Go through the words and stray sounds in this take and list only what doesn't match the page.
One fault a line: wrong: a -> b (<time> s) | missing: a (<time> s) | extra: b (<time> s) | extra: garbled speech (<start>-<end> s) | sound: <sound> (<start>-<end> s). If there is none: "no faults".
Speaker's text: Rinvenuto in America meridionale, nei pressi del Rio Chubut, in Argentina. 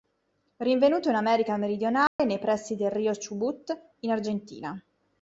sound: dropout (2.1-2.2 s)